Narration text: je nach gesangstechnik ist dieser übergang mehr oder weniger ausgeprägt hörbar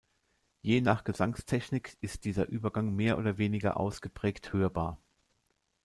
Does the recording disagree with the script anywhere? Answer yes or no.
no